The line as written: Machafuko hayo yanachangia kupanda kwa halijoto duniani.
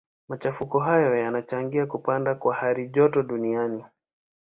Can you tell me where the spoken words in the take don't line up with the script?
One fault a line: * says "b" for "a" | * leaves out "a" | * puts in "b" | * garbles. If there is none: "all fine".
all fine